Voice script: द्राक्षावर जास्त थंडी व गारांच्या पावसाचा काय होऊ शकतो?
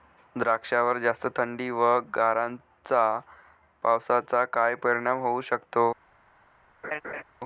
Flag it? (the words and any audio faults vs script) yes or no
yes